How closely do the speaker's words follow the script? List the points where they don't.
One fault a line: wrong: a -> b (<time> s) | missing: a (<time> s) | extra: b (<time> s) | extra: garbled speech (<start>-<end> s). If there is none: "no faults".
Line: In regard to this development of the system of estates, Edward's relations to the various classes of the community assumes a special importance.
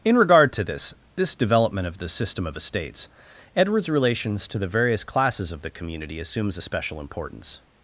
extra: this (1.1 s)